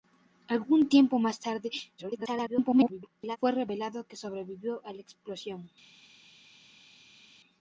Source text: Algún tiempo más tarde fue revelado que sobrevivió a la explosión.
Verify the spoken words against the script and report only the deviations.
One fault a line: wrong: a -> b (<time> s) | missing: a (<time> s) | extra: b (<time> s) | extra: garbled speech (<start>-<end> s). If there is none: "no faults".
extra: garbled speech (2.0-3.4 s)